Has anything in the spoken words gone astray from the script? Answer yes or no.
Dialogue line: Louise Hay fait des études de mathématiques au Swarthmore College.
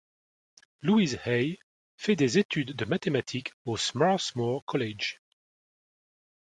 no